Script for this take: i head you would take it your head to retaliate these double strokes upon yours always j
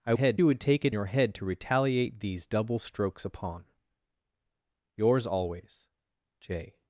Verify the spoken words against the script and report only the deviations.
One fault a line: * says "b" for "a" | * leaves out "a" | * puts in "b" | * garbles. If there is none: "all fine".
all fine